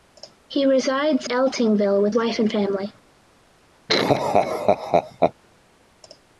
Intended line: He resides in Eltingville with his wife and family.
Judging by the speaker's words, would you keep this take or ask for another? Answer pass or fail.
fail